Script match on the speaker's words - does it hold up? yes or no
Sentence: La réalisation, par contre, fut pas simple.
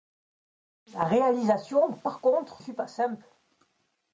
yes